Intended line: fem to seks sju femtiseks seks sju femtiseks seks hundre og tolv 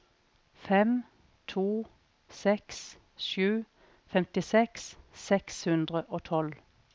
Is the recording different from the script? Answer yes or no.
yes